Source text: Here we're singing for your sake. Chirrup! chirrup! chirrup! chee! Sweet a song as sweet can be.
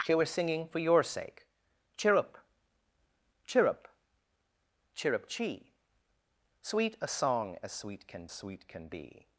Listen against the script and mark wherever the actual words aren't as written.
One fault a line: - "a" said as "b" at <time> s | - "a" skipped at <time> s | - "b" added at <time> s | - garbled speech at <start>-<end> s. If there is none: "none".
- "sweet can" added at 8.3 s